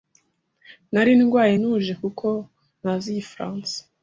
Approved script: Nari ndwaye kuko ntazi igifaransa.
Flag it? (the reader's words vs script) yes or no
yes